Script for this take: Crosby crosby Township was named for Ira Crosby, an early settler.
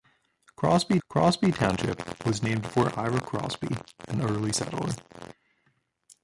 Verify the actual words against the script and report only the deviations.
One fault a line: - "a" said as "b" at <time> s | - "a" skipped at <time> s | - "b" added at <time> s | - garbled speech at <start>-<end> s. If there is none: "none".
none